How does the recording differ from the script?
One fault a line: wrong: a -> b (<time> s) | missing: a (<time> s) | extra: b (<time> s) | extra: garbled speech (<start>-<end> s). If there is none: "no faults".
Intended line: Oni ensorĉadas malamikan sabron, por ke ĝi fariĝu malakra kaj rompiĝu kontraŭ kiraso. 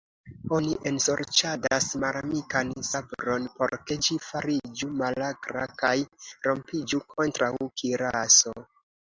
no faults